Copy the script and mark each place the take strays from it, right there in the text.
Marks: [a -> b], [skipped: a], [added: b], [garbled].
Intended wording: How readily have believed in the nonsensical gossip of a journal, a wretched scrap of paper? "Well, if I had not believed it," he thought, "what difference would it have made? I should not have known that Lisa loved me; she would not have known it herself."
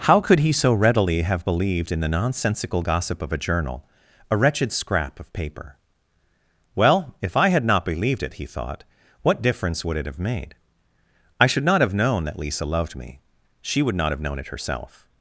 How [added: could he so] readily have believed in the nonsensical gossip of a journal, a wretched scrap of paper? "Well, if I had not believed it," he thought, "what difference would it have made? I should not have known that Lisa loved me; she would not have known it herself."